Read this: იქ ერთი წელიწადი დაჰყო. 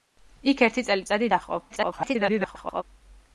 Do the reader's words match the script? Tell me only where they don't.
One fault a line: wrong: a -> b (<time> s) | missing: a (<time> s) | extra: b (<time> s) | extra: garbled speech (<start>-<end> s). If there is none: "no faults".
extra: garbled speech (1.7-2.8 s)